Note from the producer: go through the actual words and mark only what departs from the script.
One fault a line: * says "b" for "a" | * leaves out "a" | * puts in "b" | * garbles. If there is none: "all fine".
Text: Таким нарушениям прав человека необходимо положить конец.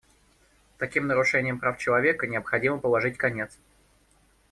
all fine